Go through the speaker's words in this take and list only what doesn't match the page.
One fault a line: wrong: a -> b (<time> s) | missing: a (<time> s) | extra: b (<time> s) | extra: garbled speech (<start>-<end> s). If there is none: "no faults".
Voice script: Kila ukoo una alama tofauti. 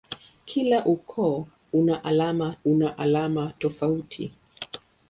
extra: una alama (2.6 s)